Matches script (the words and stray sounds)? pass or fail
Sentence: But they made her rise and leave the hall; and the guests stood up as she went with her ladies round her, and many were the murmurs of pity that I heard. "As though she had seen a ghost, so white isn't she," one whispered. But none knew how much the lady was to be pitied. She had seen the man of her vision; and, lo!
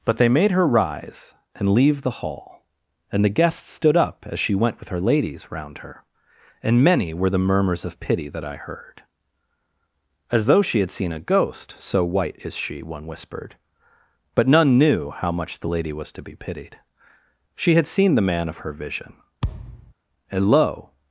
fail